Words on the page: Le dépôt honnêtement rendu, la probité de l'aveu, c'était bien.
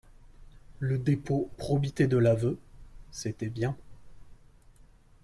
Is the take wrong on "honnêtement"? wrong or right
wrong